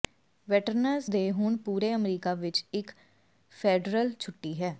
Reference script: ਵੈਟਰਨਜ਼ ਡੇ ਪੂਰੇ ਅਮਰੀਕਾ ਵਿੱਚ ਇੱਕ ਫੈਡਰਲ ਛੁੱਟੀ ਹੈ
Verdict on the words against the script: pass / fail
fail